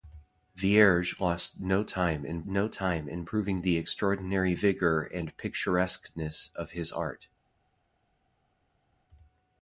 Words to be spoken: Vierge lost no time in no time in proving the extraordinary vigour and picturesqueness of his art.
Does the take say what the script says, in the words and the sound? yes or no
yes